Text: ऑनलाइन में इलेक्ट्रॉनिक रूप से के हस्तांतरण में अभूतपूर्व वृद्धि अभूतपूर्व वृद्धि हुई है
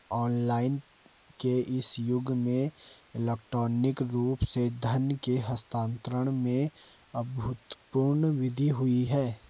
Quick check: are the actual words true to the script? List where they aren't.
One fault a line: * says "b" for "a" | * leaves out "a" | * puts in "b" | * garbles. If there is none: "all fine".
* puts in "के इस युग"
* puts in "धन"
* leaves out "अभूतपूर्व वृद्धि"